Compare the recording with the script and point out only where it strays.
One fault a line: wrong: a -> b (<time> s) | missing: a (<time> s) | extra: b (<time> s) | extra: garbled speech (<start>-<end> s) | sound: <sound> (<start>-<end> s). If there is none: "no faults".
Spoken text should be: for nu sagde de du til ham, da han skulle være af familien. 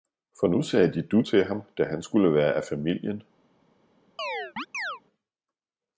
sound: chirp (4.2-5.0 s)